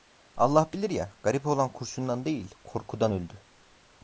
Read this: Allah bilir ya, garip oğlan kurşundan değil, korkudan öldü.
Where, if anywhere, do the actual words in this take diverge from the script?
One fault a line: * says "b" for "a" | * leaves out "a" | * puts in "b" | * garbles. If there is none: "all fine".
all fine